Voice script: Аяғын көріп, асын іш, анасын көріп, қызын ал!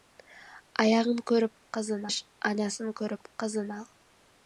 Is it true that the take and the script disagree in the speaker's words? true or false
true